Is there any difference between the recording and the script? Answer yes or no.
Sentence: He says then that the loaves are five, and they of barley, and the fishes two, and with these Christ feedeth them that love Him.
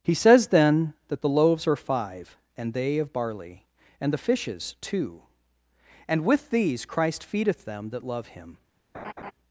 no